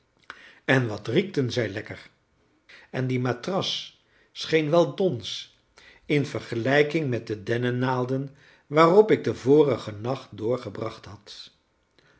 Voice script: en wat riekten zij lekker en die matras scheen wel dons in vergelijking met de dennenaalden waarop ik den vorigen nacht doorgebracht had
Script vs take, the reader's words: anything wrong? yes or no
no